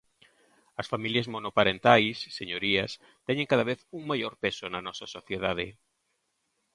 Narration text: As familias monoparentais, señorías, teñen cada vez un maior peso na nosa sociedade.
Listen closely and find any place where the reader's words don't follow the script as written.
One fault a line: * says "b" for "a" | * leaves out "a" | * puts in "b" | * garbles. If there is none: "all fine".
all fine